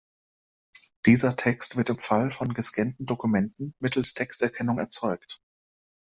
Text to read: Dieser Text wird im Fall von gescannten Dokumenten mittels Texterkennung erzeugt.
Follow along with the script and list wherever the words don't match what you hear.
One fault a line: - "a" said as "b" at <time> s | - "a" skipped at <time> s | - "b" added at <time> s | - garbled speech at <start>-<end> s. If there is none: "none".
none